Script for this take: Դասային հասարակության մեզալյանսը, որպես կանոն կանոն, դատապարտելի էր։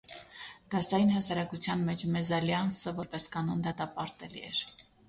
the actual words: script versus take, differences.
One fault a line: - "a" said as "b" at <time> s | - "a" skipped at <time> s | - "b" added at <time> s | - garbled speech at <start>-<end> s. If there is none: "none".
- "մեջ" added at 1.9 s
- "կանոն" skipped at 3.7 s